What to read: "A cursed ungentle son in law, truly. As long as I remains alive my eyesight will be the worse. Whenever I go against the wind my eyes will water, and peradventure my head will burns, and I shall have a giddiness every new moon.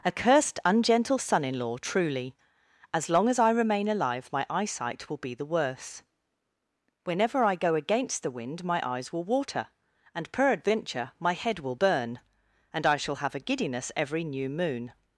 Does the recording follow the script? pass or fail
fail